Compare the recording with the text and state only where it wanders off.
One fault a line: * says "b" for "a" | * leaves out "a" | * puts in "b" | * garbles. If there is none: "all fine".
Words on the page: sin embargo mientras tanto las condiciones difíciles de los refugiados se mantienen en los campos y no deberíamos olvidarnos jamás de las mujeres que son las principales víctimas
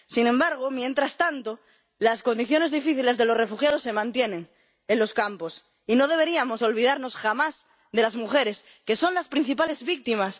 all fine